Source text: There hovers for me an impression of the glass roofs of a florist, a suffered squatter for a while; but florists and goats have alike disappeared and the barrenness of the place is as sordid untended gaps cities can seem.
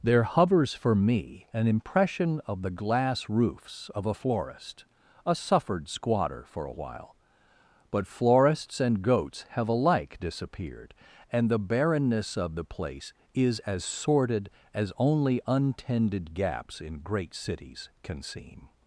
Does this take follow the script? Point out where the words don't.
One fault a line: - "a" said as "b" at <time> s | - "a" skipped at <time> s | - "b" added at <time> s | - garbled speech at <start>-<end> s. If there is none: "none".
- "as only" added at 14.7 s
- "in great" added at 16.8 s